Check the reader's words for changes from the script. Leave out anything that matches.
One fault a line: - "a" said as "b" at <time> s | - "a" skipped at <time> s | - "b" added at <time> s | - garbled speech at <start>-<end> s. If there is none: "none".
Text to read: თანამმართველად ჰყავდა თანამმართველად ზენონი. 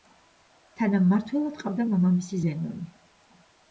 - "თანამმართველად" said as "მამამისი" at 1.9 s